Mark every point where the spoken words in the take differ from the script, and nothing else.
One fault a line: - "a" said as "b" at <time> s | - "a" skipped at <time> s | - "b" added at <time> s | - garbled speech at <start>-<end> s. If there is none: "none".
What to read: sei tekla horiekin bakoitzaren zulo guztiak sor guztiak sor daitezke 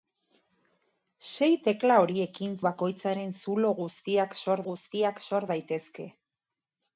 none